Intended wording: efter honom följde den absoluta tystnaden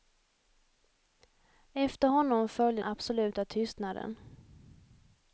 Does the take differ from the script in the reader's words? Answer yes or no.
yes